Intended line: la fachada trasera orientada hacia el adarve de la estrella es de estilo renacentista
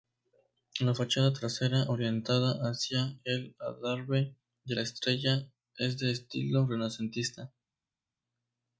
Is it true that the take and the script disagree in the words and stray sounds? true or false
false